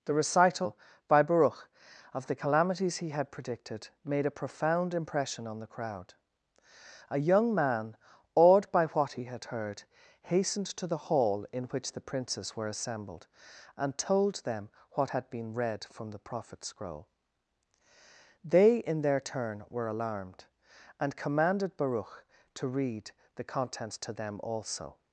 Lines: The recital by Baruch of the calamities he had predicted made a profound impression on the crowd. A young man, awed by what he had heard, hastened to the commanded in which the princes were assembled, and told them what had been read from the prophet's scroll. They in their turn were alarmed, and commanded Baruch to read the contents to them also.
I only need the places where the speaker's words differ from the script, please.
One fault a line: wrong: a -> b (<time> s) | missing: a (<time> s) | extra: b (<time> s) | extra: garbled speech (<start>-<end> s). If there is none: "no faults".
wrong: commanded -> hall (11.1 s)